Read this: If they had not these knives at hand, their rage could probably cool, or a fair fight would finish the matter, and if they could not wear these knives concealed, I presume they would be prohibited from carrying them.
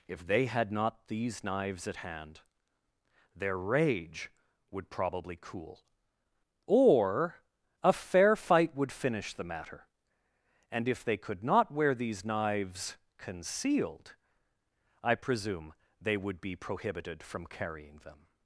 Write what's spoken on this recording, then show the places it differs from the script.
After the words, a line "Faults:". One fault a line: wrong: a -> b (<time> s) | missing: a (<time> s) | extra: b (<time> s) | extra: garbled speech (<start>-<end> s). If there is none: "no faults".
If they had not these knives at hand, their rage would probably cool, or a fair fight would finish the matter, and if they could not wear these knives concealed, I presume they would be prohibited from carrying them.
Faults:
wrong: could -> would (4.7 s)